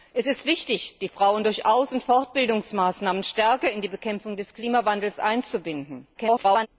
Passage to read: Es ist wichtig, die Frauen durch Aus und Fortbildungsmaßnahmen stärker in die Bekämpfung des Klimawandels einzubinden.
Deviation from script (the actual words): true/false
true